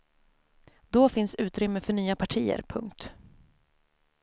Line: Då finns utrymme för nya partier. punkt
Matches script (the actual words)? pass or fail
pass